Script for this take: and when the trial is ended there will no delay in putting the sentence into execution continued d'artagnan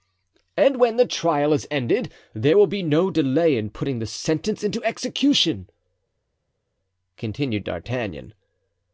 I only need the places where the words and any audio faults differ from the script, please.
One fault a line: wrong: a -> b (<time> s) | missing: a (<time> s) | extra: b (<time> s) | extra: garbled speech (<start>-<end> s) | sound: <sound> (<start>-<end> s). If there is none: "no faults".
extra: be (2.7 s)